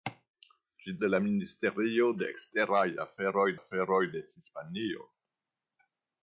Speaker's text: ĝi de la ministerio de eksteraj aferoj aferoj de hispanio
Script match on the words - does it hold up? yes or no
yes